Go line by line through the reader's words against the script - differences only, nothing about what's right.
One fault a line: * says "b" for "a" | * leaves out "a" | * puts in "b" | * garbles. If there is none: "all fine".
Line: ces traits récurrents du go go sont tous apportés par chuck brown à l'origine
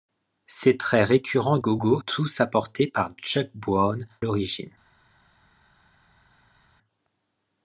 * leaves out "du"
* leaves out "sont"
* leaves out "à"